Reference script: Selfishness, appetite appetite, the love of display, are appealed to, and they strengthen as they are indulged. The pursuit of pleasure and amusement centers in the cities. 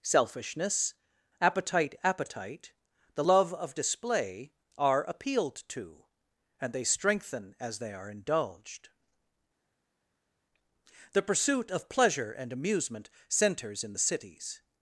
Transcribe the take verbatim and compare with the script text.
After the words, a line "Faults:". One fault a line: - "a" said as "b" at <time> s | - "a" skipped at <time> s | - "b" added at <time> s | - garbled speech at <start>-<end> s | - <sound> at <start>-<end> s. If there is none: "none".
Selfishness, appetite appetite, the love of display, are appealed to, and they strengthen as they are indulged. The pursuit of pleasure and amusement centers in the cities.
Faults:
none